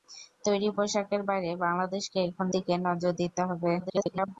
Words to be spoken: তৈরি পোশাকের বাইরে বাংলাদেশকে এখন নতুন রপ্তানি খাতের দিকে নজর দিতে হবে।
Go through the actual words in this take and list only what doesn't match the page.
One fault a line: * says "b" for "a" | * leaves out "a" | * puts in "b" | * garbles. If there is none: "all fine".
* leaves out "নতুন রপ্তানি খাতের"
* garbles